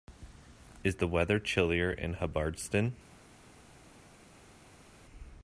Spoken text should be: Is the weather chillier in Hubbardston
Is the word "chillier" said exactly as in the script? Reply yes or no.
yes